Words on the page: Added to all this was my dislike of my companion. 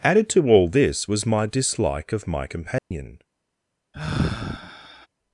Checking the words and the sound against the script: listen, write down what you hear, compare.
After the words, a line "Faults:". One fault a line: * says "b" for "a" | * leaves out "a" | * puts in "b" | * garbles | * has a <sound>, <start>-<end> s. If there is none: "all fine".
Added to all this was my dislike of my companion.
Faults:
* has a dropout, 2.8-2.9 s
* has a sigh, 3.9-5.1 s